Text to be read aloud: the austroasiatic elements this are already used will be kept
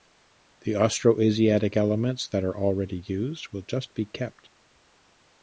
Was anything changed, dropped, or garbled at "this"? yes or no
yes